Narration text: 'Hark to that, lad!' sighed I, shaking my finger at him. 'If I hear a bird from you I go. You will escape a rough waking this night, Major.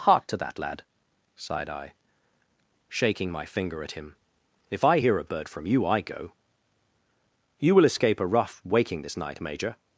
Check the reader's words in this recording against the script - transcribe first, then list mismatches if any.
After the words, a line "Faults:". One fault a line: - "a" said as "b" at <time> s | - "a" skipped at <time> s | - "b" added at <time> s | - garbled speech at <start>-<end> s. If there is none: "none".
'Hark to that, lad!' sighed I, shaking my finger at him. 'If I hear a bird from you I go. You will escape a rough waking this night, Major.
Faults:
none